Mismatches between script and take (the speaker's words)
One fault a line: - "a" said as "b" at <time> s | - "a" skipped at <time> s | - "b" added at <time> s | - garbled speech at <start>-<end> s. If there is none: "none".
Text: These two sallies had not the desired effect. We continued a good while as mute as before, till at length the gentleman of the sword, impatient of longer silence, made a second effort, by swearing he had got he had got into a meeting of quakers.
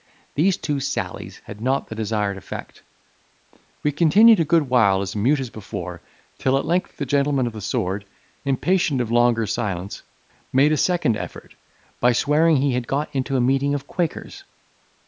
- "he had got" skipped at 13.1 s